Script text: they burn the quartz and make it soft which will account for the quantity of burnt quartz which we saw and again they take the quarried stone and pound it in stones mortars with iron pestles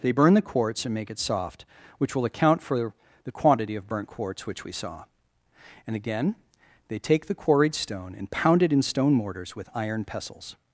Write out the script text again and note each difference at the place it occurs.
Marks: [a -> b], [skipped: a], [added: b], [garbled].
they burn the quartz and make it soft which will account for the quantity of burnt quartz which we saw and again they take the quarried stone and pound it in [stones -> stone] mortars with iron pestles